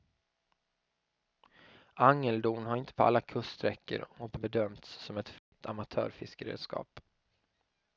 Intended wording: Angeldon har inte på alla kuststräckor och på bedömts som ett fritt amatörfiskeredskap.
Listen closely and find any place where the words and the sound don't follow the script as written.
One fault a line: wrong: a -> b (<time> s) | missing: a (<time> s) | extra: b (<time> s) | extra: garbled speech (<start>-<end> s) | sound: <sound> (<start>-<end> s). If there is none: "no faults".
sound: dropout (5.4-5.5 s)